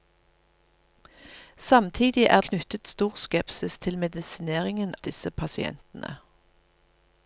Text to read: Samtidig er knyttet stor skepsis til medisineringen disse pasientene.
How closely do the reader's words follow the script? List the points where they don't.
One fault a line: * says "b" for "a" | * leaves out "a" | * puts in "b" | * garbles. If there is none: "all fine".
all fine